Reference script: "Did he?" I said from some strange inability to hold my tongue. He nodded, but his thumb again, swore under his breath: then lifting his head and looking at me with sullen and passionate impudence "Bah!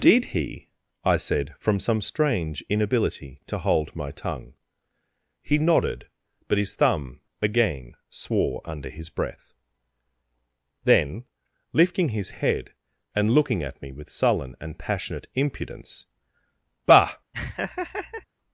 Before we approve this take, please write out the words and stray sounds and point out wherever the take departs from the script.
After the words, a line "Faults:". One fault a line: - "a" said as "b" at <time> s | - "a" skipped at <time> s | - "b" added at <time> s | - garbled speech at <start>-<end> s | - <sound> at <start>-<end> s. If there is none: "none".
"Did he?" I said from some strange inability to hold my tongue. He nodded, but his thumb again, swore under his breath: then lifting his head and looking at me with sullen and passionate impudence "Bah!
Faults:
- laugh at 17.3-18.3 s